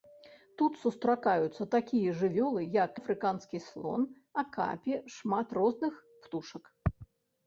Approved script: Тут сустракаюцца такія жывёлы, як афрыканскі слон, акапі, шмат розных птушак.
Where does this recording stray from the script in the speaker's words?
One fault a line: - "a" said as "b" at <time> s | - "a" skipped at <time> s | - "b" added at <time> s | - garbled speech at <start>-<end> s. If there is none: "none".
none